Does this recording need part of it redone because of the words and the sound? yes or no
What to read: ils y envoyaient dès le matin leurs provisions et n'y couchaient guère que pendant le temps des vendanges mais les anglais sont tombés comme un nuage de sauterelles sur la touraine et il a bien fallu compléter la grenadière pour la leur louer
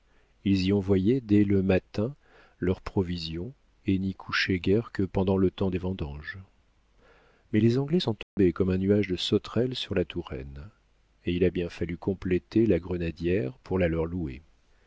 yes